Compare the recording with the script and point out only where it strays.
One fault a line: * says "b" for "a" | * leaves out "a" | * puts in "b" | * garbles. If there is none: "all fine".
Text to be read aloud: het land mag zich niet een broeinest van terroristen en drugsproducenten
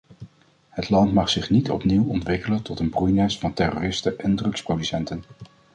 * puts in "opnieuw ontwikkelen tot"